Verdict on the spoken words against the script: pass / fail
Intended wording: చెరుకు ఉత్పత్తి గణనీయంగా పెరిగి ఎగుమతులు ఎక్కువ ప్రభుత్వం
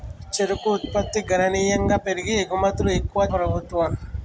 pass